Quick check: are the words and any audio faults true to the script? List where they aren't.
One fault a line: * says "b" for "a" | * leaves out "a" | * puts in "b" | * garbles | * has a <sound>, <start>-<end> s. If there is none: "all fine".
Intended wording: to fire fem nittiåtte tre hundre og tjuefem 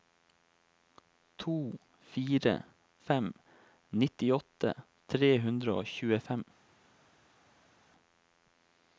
all fine